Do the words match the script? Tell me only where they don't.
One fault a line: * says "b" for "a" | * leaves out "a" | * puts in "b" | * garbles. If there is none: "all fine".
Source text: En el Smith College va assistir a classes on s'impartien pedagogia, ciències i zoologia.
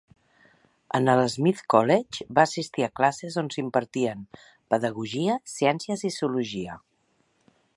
all fine